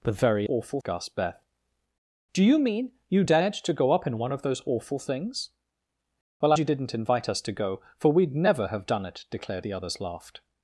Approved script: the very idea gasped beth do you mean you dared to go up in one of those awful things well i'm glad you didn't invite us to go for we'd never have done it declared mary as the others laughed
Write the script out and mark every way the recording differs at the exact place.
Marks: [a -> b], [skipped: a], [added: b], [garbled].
the very [idea -> awful] gasped beth do you mean you dared to go up in one of those awful things well [skipped: i'm glad] you didn't invite us to go for we'd never have done it declared [skipped: mary as] the others laughed